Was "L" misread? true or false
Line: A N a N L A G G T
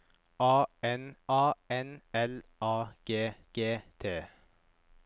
false